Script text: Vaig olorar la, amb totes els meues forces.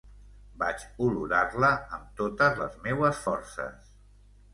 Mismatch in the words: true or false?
true